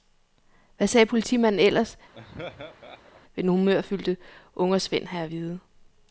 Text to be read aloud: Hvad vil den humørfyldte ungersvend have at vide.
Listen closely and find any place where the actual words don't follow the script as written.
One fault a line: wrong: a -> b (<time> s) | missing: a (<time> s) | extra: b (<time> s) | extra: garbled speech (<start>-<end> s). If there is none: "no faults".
extra: sagde politimanden ellers (0.9 s)